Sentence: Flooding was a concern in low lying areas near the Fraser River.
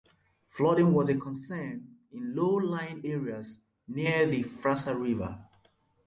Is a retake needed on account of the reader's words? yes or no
no